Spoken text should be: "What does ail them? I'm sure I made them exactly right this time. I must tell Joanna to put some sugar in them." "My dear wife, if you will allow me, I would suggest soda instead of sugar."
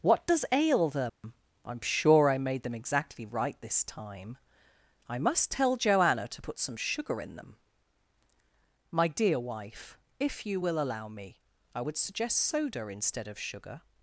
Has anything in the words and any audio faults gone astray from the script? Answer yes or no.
yes